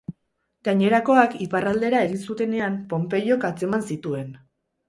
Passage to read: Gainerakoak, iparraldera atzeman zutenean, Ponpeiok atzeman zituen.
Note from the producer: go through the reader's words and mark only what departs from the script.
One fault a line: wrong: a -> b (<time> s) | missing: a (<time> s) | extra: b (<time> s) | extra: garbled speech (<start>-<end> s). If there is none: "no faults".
wrong: atzeman -> egin (2.1 s)